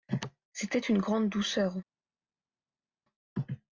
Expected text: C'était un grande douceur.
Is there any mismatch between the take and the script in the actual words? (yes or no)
yes